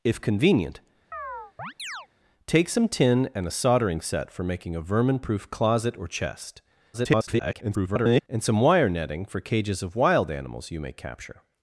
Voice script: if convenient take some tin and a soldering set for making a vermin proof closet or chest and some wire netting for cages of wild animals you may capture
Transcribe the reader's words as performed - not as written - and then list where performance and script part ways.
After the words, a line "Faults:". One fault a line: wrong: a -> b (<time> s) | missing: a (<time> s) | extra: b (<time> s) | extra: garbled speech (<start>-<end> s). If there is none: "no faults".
if convenient take some tin and a soldering set for making a vermin proof closet or chest [garbled] and some wire netting for cages of wild animals you may capture
Faults:
extra: garbled speech (6.9-8.2 s)